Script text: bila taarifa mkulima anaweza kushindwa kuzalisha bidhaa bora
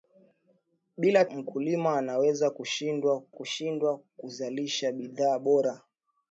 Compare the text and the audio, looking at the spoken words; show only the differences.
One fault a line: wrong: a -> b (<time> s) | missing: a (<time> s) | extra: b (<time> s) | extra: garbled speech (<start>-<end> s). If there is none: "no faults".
missing: taarifa (1.2 s)
extra: kushindwa (3.3 s)